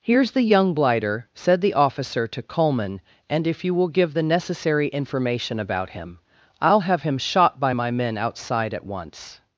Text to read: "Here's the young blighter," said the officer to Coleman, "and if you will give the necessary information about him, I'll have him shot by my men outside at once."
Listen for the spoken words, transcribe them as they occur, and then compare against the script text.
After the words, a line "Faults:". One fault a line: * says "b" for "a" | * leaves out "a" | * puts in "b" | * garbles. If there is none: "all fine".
"Here's the young blighter," said the officer to Coleman, "and if you will give the necessary information about him, I'll have him shot by my men outside at once."
Faults:
all fine